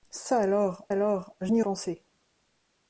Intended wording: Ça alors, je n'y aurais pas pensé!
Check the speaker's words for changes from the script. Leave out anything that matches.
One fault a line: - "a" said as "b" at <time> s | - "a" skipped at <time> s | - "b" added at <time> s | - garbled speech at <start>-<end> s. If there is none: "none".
- "alors" added at 0.9 s
- "aurais pas" skipped at 1.6 s